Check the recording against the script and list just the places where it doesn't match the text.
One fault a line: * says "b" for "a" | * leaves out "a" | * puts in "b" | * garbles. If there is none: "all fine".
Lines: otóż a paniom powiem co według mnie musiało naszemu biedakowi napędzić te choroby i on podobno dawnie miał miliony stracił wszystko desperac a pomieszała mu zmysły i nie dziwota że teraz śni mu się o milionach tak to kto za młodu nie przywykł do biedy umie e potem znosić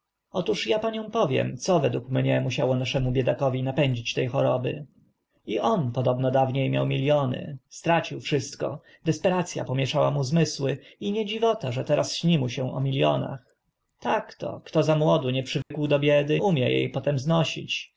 all fine